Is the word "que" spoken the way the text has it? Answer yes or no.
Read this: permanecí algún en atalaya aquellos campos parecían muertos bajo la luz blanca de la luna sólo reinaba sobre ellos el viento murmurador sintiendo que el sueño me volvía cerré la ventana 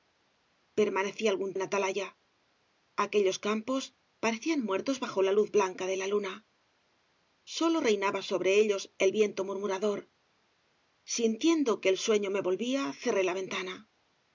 yes